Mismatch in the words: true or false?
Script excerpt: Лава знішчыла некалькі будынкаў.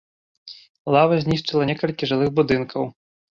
true